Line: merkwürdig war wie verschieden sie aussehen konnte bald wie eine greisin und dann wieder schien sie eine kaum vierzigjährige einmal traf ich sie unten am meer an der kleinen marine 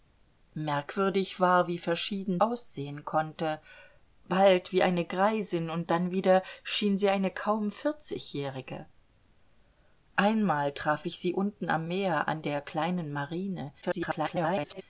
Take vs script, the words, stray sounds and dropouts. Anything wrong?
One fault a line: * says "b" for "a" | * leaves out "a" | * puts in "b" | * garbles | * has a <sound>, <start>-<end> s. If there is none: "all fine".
* leaves out "sie"
* garbles